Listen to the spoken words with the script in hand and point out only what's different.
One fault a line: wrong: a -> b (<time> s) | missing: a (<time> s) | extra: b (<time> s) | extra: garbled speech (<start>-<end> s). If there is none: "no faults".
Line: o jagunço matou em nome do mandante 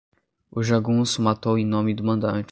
no faults